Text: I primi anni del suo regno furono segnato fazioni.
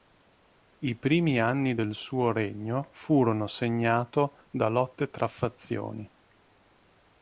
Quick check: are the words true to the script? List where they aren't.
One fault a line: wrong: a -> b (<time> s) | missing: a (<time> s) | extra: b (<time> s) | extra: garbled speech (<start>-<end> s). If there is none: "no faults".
extra: da lotte tra (4.5 s)